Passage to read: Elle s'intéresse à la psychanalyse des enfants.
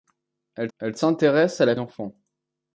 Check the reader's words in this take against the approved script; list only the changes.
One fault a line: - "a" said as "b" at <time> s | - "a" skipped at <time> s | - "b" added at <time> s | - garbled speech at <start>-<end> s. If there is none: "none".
- "elle" added at 0.8 s
- "psychanalyse des" skipped at 1.7 s